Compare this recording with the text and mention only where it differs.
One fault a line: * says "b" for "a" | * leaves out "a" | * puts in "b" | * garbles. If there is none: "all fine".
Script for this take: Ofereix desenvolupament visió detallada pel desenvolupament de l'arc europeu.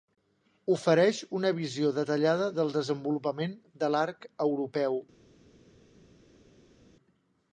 * says "una" for "desenvolupament"
* says "del" for "pel"